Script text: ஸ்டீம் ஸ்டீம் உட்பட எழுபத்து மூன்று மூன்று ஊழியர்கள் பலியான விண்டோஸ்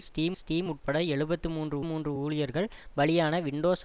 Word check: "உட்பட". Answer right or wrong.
right